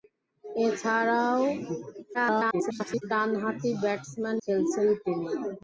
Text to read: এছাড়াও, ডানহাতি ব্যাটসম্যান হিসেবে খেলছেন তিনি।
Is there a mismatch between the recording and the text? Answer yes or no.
yes